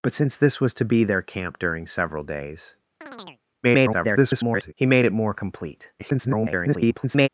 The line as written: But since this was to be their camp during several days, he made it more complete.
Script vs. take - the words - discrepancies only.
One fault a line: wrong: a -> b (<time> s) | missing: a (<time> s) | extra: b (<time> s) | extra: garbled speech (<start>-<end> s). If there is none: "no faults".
extra: garbled speech (3.6-4.7 s)
extra: garbled speech (6.0-7.3 s)